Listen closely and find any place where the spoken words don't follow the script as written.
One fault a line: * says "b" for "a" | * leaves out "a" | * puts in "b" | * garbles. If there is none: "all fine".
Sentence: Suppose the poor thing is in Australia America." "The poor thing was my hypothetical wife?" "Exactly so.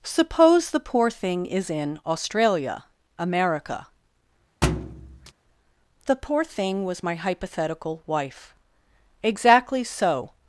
all fine